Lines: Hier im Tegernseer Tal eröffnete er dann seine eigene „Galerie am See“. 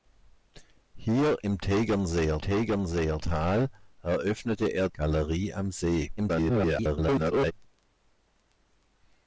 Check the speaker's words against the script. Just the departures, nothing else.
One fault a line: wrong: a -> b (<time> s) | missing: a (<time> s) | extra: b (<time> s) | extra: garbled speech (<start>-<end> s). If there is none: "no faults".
extra: Tegernseer (2.4 s)
missing: dann seine eigene (4.9 s)
extra: garbled speech (6.2-7.5 s)